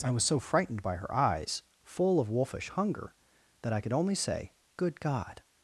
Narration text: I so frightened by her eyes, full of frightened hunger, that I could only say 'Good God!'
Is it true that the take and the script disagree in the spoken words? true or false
true